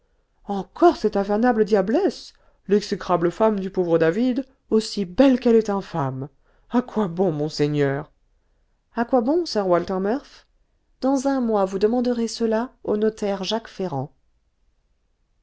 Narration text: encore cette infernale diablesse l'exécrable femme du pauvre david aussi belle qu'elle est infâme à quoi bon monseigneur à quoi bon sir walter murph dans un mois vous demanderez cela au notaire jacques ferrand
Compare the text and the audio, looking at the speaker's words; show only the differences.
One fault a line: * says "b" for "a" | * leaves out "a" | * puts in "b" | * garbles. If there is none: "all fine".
all fine